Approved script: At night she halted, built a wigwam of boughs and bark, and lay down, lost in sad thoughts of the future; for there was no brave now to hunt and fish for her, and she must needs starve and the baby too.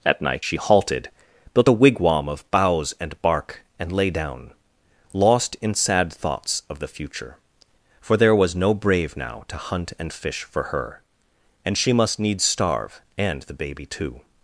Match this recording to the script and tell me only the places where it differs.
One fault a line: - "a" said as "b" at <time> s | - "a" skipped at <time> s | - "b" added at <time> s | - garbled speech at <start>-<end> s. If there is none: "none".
none